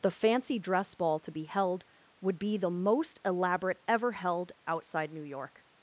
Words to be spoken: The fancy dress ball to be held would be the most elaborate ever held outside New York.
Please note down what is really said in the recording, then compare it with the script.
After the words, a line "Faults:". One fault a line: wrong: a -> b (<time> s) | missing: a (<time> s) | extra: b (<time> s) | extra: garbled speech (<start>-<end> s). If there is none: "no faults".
The fancy dress ball to be held would be the most elaborate ever held outside New York.
Faults:
no faults